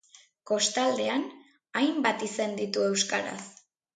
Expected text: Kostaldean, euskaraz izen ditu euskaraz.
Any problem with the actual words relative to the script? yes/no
yes